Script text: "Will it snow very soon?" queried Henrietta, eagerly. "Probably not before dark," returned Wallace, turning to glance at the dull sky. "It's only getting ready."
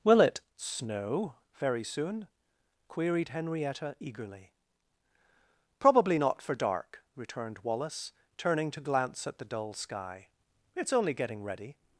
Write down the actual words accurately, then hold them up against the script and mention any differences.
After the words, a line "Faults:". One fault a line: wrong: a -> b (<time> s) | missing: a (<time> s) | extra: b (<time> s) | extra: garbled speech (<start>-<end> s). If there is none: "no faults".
"Will it snow very soon?" queried Henrietta, eagerly. "Probably not for dark," returned Wallace, turning to glance at the dull sky. "It's only getting ready."
Faults:
wrong: before -> for (6.4 s)